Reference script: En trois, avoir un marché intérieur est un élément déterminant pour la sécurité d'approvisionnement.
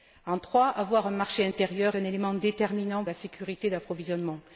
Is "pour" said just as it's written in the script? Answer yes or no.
no